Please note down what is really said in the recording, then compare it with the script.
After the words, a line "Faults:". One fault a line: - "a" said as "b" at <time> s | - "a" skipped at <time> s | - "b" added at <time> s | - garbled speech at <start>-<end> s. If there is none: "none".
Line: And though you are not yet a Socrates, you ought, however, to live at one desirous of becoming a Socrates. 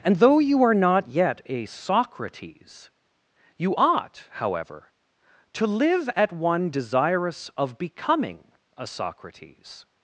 And though you are not yet a Socrates, you ought, however, to live at one desirous of becoming a Socrates.
Faults:
none